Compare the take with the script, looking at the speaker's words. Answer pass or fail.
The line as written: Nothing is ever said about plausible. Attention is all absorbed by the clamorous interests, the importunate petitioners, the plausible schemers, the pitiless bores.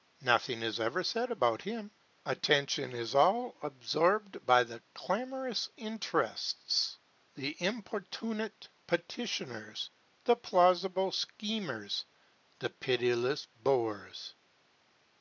fail